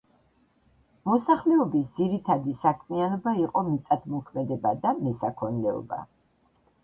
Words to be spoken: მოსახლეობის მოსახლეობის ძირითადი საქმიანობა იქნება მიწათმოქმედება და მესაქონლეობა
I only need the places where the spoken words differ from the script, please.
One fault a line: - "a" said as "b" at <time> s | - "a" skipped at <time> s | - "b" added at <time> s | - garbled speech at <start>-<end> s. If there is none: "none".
- "მოსახლეობის" skipped at 1.9 s
- "იქნება" said as "იყო" at 3.4 s